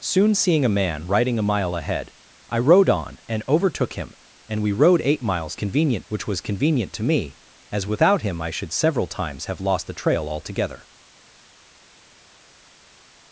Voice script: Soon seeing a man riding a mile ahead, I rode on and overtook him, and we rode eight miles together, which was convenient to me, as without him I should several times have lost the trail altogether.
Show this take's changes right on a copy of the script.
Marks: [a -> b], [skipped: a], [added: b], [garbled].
Soon seeing a man riding a mile ahead, I rode on and overtook him, and we rode eight miles [together, -> convenient] which was convenient to me, as without him I should several times have lost the trail altogether.